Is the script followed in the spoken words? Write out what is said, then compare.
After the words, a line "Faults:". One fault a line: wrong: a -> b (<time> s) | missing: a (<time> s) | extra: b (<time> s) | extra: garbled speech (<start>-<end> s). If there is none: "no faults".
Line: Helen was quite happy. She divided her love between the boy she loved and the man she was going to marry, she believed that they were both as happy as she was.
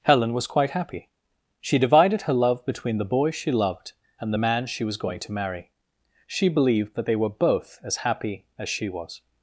Helen was quite happy. She divided her love between the boy she loved and the man she was going to marry, she believed that they were both as happy as she was.
Faults:
no faults